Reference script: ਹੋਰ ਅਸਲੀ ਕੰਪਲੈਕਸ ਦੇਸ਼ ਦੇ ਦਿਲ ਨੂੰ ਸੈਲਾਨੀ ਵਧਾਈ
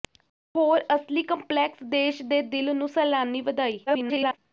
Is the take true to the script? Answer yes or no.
no